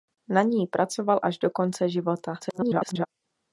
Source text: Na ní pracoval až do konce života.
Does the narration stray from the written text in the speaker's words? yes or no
yes